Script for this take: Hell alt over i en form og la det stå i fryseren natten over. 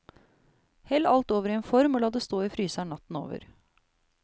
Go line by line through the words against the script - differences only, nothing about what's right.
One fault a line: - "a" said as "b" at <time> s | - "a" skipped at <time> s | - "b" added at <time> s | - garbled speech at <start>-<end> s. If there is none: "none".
none